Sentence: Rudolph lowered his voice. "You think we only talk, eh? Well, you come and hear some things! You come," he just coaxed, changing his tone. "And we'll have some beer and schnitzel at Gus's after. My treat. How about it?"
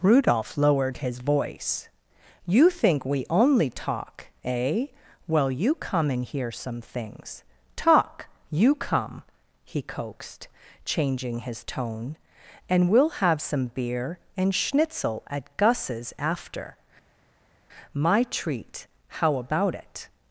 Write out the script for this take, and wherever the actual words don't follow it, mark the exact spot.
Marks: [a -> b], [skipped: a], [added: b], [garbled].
Rudolph lowered his voice. "You think we only talk, eh? Well, you come and hear some things! [added: Talk] You come," he [skipped: just] coaxed, changing his tone. "And we'll have some beer and schnitzel at Gus's after. My treat. How about it?"